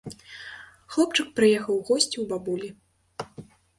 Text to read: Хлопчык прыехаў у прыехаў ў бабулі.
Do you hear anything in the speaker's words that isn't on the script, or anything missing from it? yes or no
yes